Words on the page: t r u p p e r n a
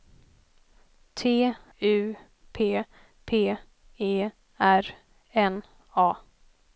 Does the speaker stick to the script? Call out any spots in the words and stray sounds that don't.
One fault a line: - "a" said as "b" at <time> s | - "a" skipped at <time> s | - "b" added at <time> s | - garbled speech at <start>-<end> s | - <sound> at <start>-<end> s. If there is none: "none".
- "r" skipped at 1.5 s